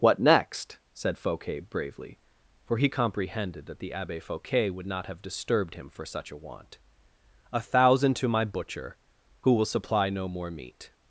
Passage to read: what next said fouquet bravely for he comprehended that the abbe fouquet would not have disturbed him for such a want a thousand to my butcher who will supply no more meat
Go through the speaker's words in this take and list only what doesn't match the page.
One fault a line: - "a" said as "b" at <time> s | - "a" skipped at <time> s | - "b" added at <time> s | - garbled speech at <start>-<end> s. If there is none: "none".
none